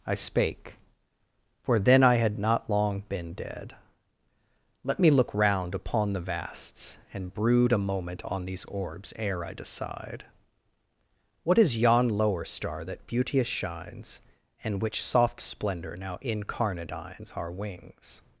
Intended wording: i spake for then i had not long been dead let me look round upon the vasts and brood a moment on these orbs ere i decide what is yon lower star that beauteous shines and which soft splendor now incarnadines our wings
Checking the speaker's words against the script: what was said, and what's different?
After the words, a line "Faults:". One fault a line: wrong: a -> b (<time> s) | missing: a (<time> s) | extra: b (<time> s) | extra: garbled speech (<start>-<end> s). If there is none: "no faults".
i spake for then i had not long been dead let me look round upon the vasts and brood a moment on these orbs ere i decide what is yon lower star that beauteous shines and which soft splendor now incarnadines our wings
Faults:
no faults